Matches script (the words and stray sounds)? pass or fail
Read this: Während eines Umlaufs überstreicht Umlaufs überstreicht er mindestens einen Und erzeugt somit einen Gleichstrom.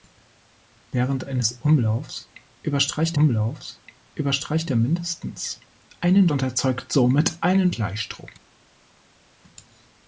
pass